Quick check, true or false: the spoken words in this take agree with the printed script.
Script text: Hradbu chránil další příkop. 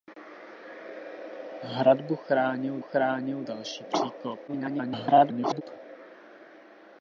false